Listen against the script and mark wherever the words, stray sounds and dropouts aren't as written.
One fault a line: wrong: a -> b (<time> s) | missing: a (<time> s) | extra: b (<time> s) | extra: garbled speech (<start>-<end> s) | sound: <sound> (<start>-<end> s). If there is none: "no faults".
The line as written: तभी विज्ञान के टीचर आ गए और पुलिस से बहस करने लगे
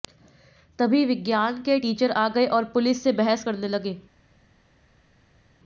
no faults